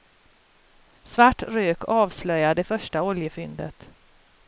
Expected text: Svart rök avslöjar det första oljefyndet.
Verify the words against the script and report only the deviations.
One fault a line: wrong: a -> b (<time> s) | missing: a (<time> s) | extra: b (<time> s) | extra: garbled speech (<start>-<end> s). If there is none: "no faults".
no faults